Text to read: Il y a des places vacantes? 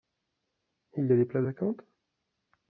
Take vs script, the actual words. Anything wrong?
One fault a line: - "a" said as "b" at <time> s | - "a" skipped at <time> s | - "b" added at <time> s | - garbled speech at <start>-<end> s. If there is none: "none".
none